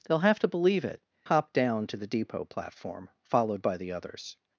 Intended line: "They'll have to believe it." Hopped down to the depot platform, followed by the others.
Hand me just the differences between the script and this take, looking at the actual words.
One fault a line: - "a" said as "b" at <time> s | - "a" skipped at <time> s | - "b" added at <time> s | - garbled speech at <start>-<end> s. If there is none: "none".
none